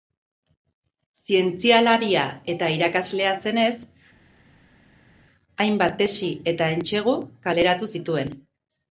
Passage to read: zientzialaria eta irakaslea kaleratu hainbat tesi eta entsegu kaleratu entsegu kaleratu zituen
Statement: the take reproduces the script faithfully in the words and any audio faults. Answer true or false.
false